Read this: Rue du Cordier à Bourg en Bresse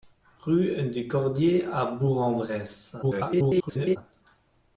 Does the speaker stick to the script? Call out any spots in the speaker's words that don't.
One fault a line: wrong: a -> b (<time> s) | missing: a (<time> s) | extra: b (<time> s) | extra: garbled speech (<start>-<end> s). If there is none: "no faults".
extra: garbled speech (3.0-4.0 s)